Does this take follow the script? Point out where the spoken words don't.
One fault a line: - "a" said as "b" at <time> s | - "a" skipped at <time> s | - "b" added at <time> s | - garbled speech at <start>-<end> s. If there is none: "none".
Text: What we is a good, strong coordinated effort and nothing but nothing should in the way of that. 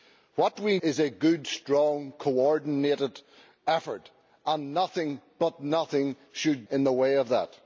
none